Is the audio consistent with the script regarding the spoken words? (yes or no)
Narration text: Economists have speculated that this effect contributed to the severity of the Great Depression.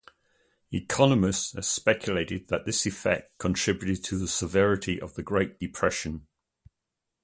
yes